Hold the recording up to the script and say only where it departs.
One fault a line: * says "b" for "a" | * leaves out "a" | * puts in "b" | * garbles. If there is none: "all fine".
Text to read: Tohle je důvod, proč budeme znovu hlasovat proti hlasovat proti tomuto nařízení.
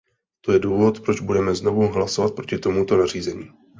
* says "To" for "Tohle"
* leaves out "hlasovat proti"